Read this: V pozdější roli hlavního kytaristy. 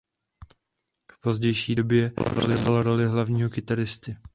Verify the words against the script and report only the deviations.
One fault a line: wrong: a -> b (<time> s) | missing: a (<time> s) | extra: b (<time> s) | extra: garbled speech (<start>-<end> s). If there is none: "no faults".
extra: době převzal (1.7 s)